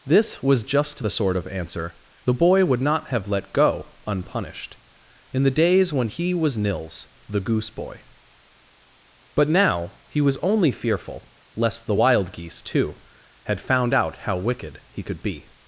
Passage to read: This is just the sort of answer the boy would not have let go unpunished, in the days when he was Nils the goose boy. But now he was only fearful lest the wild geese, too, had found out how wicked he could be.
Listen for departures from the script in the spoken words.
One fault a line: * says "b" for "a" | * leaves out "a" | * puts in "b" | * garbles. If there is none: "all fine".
* says "was" for "is"